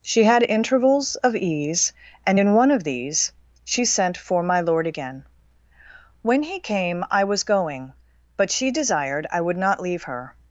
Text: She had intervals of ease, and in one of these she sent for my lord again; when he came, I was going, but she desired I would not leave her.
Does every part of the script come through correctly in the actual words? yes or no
yes